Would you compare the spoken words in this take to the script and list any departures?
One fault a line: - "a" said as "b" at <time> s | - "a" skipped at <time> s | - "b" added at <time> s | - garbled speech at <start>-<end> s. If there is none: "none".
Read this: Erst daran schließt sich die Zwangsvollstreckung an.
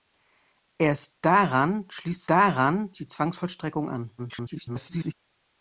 - "sich" said as "daran" at 2.3 s
- garbled speech at 4.2-5.1 s